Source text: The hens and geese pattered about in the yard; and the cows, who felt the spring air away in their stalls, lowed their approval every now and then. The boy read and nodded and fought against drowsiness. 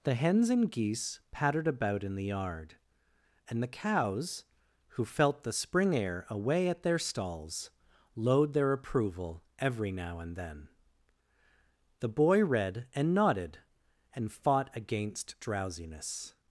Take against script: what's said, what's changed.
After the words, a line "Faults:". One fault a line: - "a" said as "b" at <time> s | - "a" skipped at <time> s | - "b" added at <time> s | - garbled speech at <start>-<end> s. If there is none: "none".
The hens and geese pattered about in the yard; and the cows, who felt the spring air away at their stalls, lowed their approval every now and then. The boy read and nodded and fought against drowsiness.
Faults:
- "in" said as "at" at 6.7 s